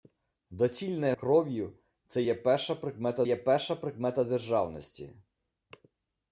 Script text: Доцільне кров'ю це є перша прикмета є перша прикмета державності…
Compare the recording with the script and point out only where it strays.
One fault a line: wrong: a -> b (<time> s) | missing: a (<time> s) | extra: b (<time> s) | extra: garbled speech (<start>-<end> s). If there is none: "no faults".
no faults